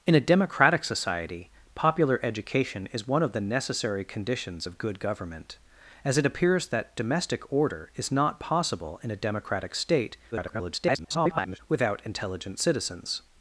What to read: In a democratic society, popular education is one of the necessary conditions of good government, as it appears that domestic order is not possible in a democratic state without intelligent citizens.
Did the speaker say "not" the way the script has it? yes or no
yes